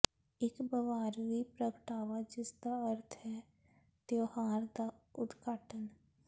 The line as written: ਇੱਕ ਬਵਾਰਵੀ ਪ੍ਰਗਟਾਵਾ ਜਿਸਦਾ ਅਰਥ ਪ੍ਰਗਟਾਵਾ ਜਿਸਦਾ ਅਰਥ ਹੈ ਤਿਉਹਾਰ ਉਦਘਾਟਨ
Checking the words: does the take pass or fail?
fail